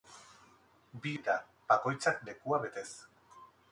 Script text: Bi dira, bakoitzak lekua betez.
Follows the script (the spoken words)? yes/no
yes